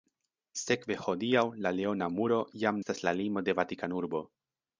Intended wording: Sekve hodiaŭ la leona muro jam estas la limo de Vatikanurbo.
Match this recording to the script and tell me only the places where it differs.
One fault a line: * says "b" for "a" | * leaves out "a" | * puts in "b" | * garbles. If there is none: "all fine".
all fine